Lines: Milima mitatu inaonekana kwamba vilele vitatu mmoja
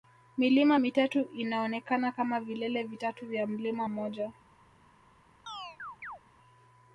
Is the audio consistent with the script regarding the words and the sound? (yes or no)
no